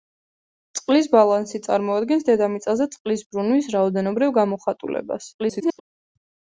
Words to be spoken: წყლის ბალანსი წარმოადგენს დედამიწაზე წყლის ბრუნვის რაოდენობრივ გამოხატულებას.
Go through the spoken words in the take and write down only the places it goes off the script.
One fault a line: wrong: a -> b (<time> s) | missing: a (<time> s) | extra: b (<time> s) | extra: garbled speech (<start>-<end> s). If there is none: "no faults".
extra: garbled speech (5.4-5.8 s)